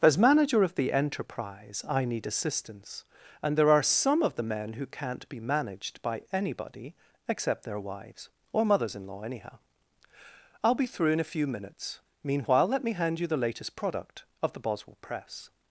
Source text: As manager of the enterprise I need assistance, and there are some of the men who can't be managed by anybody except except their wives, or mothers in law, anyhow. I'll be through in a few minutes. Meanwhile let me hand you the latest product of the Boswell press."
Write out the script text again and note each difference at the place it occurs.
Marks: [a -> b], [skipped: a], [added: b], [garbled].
As manager of the enterprise I need assistance, and there are some of the men who can't be managed by anybody except [skipped: except] their wives, or mothers in law, anyhow. I'll be through in a few minutes. Meanwhile let me hand you the latest product of the Boswell press."